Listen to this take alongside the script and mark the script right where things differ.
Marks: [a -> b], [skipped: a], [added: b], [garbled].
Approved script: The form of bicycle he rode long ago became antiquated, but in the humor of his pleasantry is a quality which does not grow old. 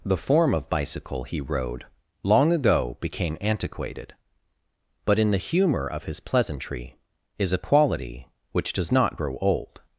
The form of bicycle he rode long ago became antiquated, but in the humor of his pleasantry is a quality which does not grow old.